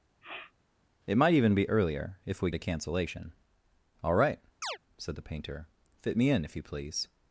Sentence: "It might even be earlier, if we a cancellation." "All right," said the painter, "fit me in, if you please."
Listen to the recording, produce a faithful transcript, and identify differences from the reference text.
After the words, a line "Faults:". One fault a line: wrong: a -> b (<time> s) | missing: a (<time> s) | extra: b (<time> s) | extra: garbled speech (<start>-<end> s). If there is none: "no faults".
"It might even be earlier, if we a cancellation." "All right," said the painter, "fit me in, if you please."
Faults:
no faults